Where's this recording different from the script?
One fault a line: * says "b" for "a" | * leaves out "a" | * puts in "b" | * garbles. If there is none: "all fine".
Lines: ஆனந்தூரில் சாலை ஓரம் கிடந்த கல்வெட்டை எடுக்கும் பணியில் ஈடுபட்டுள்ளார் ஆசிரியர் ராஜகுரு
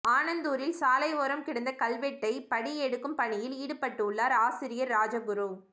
* puts in "படி"